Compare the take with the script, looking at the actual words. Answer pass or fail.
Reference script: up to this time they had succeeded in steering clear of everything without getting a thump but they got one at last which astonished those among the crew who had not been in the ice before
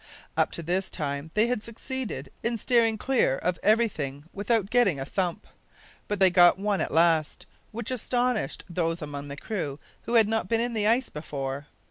pass